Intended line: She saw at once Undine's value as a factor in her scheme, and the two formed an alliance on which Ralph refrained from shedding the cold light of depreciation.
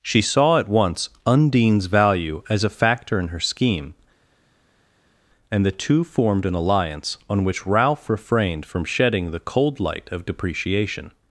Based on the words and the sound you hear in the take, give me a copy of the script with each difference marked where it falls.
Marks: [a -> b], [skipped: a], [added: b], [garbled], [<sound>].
She saw at once Undine's value as a factor in her scheme, and the two formed an alliance on which Ralph refrained from shedding the cold light of depreciation.